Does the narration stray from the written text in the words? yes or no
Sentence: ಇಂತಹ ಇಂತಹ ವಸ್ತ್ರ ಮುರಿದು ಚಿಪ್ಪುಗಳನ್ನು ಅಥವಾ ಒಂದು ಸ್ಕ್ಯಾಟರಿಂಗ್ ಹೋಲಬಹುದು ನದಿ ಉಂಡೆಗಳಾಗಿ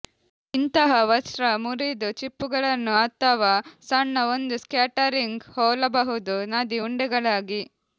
yes